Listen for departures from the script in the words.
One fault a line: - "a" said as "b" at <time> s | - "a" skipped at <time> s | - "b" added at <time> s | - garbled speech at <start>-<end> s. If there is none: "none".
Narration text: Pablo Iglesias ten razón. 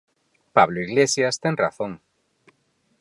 none